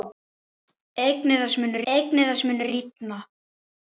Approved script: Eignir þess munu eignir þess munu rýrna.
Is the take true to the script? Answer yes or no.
yes